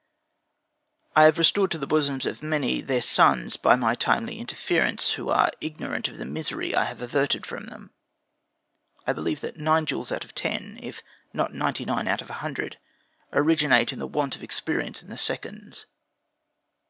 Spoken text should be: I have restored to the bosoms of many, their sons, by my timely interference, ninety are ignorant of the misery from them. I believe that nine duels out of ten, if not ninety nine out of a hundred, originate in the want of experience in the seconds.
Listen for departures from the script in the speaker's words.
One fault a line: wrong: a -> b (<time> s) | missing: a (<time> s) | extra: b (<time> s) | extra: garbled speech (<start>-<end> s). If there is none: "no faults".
wrong: ninety -> who (5.1 s)
extra: I have averted (6.7 s)